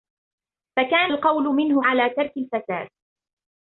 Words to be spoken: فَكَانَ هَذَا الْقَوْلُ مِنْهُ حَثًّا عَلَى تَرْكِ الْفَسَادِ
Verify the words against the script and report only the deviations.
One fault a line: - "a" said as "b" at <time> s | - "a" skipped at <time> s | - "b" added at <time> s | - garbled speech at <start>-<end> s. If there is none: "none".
- "هَذَا" skipped at 1.1 s
- "حَثًّا" skipped at 1.8 s